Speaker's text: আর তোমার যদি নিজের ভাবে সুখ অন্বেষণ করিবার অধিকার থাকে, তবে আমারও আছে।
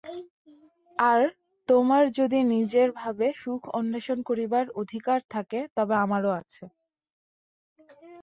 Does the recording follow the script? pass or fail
pass